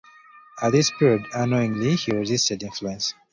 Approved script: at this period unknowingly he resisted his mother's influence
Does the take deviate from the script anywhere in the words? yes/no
yes